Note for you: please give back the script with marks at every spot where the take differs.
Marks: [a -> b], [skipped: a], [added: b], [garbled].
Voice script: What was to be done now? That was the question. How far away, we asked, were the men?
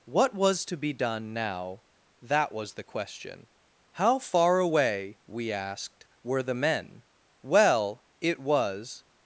What was to be done now? That was the question. How far away, we asked, were the men? [added: Well it was]